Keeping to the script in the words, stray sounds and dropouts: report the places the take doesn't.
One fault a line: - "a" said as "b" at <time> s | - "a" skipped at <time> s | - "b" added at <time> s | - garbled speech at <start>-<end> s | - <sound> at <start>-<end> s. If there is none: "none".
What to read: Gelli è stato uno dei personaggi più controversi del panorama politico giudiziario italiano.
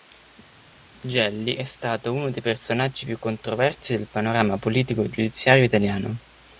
none